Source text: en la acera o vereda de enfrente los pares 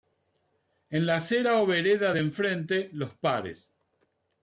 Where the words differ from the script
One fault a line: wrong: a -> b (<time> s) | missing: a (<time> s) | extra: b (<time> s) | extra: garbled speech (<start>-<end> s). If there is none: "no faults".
no faults